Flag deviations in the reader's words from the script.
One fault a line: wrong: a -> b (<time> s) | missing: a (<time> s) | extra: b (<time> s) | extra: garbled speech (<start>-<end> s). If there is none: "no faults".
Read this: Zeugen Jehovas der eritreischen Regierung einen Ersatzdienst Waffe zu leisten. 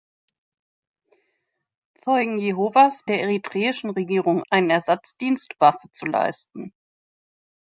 no faults